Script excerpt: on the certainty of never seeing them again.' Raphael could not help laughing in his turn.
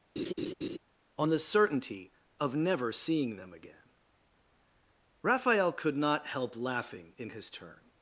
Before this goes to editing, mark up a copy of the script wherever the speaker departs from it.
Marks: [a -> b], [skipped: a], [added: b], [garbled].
on the certainty of never seeing them again.' Raphael could not help laughing in his turn.